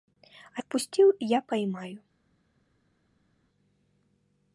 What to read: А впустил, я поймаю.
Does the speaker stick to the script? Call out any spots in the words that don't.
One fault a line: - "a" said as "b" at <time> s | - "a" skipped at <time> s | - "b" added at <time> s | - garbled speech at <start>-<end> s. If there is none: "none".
none